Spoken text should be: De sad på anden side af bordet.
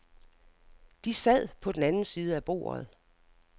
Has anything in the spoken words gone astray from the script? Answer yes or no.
yes